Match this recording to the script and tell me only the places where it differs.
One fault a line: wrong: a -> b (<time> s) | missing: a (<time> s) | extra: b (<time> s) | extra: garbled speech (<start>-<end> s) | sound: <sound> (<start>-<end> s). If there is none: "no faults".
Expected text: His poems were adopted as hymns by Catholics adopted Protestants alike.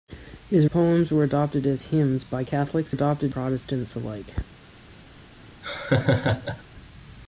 sound: laugh (5.6-6.6 s)